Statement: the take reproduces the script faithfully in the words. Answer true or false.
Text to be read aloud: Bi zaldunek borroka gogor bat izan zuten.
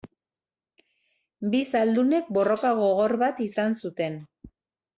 true